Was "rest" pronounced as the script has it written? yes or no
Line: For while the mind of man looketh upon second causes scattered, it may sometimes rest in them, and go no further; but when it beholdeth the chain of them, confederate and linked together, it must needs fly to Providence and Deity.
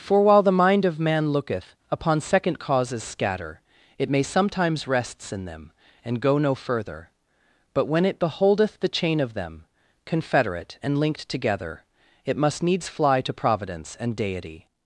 no